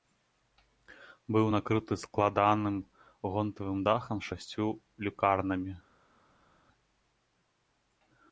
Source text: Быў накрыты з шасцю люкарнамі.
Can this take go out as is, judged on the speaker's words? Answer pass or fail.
fail